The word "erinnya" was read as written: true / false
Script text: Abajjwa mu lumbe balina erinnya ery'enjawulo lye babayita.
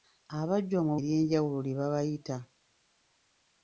false